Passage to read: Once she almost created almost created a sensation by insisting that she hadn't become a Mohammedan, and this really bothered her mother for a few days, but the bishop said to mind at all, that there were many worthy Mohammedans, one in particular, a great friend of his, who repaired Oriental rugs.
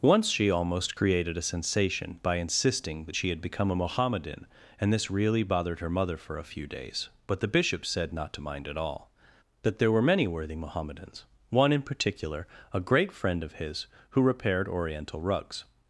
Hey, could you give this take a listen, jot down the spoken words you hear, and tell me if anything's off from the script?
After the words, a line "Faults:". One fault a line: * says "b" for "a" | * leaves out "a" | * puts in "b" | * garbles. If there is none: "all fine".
Once she almost created a sensation by insisting that she had become a Mohammedan, and this really bothered her mother for a few days, but the bishop said not to mind at all, that there were many worthy Mohammedans, one in particular, a great friend of his, who repaired Oriental rugs.
Faults:
* leaves out "almost created"
* says "had" for "hadn't"
* puts in "not"